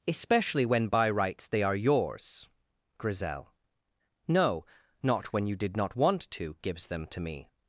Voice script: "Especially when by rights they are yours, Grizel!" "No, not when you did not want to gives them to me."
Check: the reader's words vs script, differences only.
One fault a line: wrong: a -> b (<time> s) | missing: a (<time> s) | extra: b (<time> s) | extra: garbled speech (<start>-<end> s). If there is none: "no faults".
no faults